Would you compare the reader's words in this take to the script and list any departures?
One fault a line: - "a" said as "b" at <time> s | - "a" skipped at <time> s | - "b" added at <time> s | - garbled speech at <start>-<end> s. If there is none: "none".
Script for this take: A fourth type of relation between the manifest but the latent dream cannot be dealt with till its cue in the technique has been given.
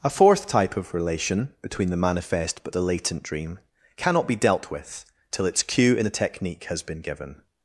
none